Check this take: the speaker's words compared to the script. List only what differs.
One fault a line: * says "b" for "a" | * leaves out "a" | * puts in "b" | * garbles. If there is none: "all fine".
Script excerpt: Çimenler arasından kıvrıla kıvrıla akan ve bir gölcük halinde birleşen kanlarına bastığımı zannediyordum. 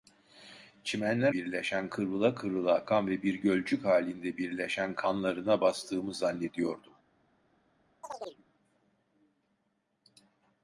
* says "birleşen" for "arasından"